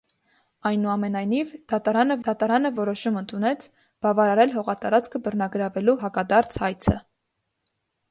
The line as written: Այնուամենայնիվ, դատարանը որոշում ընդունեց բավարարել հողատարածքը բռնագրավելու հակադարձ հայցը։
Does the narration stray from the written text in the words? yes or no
yes